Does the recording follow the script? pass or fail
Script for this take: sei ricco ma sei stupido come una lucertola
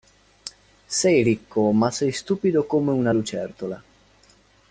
pass